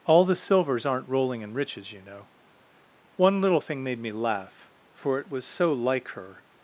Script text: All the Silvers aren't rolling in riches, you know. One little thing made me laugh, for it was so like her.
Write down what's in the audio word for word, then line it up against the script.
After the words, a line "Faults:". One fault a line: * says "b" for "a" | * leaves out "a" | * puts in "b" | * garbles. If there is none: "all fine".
All the Silvers aren't rolling in riches, you know. One little thing made me laugh, for it was so like her.
Faults:
all fine